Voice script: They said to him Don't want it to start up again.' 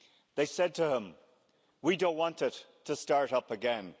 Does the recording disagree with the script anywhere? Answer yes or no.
yes